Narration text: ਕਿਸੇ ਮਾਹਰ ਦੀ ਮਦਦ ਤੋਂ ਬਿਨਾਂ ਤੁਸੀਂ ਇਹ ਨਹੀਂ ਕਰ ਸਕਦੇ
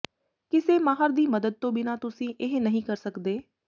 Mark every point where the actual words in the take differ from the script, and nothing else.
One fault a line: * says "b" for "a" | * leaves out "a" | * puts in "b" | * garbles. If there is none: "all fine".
all fine